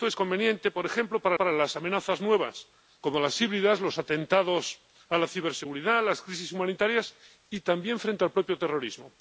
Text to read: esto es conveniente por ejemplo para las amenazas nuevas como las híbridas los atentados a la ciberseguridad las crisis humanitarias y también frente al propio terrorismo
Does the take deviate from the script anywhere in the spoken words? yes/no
yes